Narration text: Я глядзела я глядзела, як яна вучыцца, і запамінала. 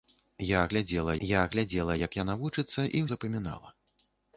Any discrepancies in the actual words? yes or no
no